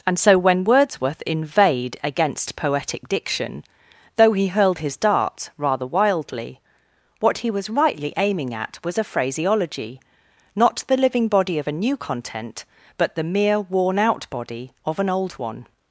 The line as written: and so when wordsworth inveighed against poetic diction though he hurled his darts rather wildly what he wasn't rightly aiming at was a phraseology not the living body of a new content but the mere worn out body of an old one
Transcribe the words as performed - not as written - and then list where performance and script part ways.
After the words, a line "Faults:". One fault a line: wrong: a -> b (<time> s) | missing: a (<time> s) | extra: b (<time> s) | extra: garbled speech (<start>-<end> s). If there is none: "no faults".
and so when wordsworth inveighed against poetic diction though he hurled his darts rather wildly what he was rightly aiming at was a phraseology not the living body of a new content but the mere worn out body of an old one
Faults:
wrong: wasn't -> was (7.5 s)